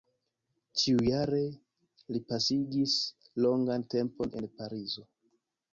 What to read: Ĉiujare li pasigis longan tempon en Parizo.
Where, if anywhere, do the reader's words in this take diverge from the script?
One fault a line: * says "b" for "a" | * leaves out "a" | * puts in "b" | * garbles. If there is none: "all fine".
all fine